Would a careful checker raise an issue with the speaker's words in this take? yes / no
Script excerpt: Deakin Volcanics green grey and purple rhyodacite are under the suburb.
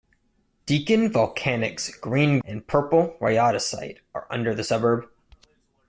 yes